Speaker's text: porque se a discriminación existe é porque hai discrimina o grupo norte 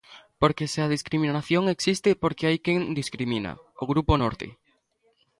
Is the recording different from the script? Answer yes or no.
yes